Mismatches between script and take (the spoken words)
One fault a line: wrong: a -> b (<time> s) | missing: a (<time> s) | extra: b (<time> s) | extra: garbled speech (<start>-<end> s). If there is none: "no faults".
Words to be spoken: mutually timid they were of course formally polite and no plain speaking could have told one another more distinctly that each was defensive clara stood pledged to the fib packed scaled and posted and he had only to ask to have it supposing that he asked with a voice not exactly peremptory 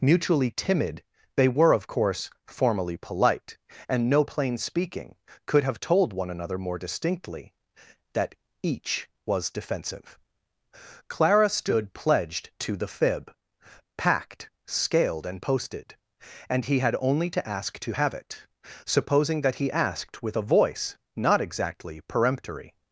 no faults